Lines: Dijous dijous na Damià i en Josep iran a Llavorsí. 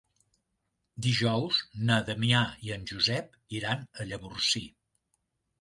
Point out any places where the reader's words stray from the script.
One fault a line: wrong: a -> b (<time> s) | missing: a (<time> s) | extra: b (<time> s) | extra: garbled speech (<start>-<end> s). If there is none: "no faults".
missing: dijous (1.6 s)